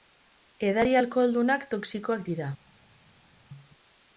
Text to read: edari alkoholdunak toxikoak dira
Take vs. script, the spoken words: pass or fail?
pass